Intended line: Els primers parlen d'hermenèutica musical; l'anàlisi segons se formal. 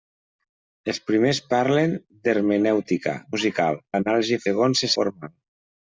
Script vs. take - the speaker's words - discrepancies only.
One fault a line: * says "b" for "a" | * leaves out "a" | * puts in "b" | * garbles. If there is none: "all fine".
all fine